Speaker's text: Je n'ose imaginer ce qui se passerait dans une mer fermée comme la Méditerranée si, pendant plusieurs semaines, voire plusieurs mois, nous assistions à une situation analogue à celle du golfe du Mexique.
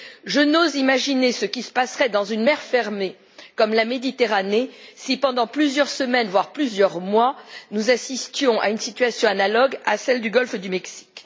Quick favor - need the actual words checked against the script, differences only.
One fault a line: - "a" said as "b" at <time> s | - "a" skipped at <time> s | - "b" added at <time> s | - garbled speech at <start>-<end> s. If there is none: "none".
none